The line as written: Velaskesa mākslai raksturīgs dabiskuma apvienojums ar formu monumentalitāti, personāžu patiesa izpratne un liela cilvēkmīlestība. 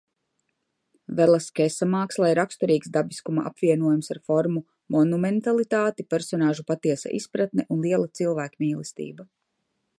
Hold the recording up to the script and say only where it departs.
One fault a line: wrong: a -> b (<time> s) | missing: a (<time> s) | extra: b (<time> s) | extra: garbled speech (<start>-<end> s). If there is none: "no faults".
no faults